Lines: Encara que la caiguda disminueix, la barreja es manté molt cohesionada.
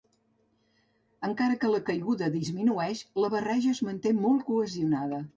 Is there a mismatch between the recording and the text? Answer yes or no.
no